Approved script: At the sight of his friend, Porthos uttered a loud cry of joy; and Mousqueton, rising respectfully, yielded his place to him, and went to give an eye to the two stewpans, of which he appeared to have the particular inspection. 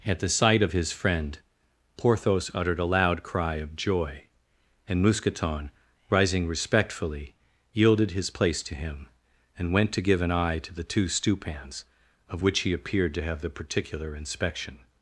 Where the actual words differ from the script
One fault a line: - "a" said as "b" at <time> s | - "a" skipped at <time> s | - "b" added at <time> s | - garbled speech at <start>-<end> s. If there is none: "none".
none